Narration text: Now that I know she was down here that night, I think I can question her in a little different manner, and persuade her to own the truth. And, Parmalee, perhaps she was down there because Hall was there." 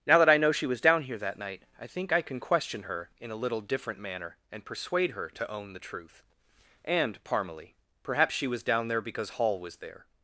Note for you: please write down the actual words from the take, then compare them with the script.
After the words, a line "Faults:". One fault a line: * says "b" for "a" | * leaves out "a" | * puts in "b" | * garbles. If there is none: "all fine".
Now that I know she was down here that night, I think I can question her in a little different manner, and persuade her to own the truth. And, Parmalee, perhaps she was down there because Hall was there."
Faults:
all fine